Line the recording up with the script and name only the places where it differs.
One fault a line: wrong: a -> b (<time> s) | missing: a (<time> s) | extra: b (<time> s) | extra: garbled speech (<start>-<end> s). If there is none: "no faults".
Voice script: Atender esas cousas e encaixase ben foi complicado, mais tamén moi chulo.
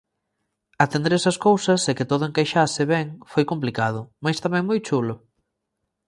extra: que todo (2.0 s)